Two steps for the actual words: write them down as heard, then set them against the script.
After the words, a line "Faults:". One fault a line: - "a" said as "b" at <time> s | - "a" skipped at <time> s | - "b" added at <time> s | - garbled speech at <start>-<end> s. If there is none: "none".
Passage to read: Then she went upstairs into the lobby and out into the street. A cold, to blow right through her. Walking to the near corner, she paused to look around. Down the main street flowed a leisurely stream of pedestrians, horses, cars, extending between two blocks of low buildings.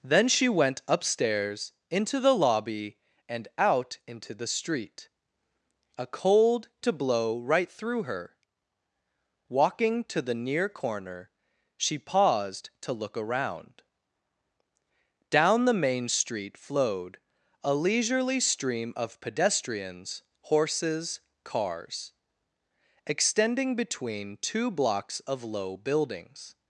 Then she went upstairs into the lobby and out into the street. A cold, to blow right through her. Walking to the near corner, she paused to look around. Down the main street flowed a leisurely stream of pedestrians, horses, cars, extending between two blocks of low buildings.
Faults:
none